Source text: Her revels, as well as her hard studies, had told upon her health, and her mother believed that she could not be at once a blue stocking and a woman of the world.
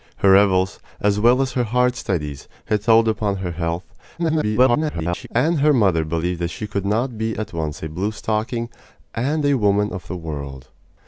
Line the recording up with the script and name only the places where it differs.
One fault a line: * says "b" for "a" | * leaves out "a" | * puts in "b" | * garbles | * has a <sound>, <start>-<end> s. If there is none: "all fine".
* garbles